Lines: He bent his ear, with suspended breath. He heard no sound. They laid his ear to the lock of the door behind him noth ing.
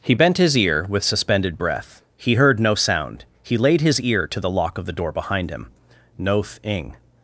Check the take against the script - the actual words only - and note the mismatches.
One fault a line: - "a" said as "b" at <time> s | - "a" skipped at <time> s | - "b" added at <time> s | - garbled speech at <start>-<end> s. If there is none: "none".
- "They" said as "He" at 3.4 s